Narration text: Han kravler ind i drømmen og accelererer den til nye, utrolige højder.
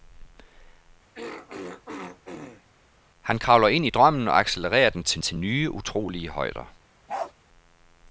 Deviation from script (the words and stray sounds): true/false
true